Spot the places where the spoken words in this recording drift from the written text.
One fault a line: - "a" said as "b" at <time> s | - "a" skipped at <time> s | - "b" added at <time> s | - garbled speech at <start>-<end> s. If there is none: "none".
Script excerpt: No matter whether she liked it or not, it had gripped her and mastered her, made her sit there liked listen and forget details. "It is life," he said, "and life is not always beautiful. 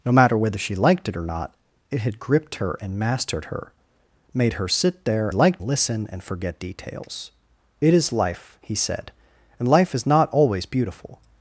none